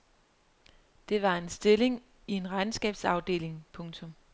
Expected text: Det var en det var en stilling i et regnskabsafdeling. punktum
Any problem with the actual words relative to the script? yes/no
yes